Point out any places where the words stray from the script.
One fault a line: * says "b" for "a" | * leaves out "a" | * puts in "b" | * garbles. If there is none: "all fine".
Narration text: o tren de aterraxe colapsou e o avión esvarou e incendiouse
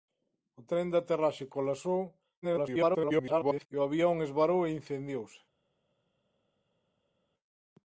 * garbles